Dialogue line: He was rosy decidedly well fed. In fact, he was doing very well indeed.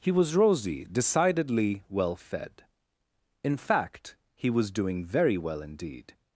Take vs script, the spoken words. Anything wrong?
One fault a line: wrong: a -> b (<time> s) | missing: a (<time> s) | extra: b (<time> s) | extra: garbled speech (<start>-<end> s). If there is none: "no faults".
no faults